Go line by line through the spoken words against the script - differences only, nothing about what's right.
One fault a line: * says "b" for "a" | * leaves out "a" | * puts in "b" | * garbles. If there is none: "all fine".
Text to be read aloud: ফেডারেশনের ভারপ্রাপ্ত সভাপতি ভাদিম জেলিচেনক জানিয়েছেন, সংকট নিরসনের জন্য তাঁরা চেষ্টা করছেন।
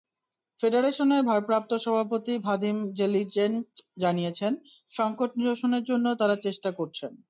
all fine